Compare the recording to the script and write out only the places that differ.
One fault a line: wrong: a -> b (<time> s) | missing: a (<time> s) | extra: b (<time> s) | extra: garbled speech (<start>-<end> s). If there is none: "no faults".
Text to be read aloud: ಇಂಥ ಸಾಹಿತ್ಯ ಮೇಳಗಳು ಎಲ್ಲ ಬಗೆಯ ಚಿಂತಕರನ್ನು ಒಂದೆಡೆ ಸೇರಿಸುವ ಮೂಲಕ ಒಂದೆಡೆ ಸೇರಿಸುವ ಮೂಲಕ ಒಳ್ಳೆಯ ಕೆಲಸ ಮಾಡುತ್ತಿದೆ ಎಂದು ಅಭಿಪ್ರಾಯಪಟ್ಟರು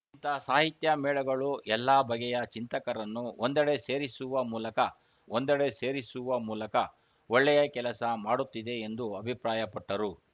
no faults